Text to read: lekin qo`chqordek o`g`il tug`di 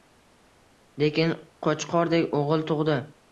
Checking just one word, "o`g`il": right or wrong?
right